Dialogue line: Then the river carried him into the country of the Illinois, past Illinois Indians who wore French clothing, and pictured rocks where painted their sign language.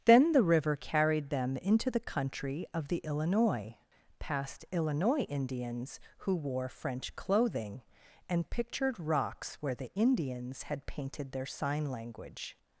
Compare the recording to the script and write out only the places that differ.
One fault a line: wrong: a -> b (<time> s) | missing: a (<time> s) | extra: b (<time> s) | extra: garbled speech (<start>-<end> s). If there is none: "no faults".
wrong: him -> them (1.3 s)
extra: the Indians had (9.8 s)